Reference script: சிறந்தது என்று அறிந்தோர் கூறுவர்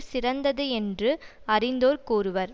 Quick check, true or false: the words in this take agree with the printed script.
true